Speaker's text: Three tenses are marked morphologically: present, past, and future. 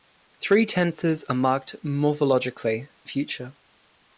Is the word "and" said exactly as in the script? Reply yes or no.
no